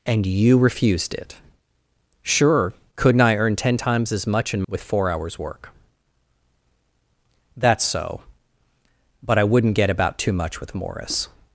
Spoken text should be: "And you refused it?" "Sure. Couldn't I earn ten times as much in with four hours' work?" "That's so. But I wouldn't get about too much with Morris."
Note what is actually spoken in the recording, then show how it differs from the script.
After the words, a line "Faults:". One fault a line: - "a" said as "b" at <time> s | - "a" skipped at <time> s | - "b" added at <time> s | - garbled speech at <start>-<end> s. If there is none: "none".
"And you refused it?" "Sure. Couldn't I earn ten times as much in with four hours' work?" "That's so. But I wouldn't get about too much with Morris."
Faults:
none